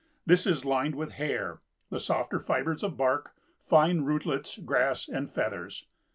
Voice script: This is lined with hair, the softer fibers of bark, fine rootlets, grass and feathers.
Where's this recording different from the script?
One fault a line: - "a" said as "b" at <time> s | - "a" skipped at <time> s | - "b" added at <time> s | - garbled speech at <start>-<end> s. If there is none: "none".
none